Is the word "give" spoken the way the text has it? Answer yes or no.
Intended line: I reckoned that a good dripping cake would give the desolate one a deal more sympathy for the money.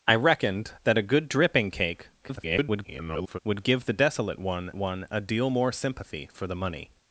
yes